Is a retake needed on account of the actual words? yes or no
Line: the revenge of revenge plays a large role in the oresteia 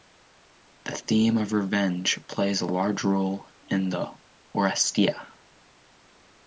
yes